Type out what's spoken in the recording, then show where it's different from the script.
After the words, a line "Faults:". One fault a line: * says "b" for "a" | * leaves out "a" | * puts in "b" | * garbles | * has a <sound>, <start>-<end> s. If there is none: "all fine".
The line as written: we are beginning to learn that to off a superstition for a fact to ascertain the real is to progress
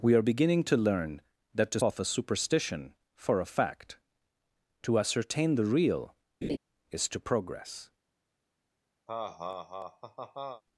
we are beginning to learn that to off a superstition for a fact to ascertain the real is to progress
Faults:
* has a laugh, 6.4-6.6 s
* has a laugh, 9.1-10.6 s